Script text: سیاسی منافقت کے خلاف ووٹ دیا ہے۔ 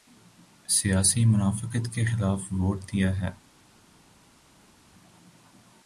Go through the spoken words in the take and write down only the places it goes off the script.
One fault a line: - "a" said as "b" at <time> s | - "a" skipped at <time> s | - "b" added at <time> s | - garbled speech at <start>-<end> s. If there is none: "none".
none